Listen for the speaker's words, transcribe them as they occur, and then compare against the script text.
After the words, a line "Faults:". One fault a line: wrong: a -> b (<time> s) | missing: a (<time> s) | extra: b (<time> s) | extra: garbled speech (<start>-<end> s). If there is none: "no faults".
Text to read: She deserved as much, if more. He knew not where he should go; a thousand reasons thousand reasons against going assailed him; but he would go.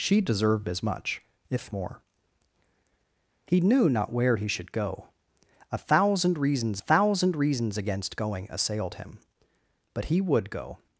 She deserved as much, if more. He knew not where he should go; a thousand reasons thousand reasons against going assailed him; but he would go.
Faults:
no faults